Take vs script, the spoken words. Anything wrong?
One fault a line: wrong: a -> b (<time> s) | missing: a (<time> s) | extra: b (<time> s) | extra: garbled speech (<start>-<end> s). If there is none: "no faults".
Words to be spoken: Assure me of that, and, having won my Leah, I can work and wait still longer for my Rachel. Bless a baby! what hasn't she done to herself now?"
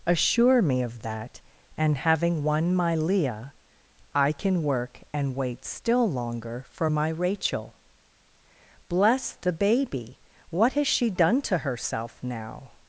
wrong: a -> the (9.3 s)
wrong: hasn't -> has (10.7 s)